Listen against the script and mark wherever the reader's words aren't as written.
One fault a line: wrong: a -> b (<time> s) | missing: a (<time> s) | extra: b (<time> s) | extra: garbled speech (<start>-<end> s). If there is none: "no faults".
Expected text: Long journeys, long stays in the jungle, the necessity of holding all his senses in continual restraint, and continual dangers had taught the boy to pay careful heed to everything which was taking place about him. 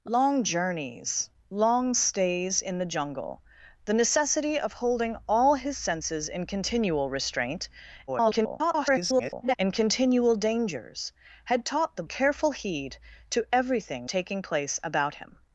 extra: garbled speech (8.1-9.6 s)
missing: boy to pay (12.0 s)
missing: which was (14.1 s)